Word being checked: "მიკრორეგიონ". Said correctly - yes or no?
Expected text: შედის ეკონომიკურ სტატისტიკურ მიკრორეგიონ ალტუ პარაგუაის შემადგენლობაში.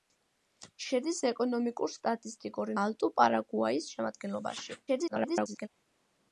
no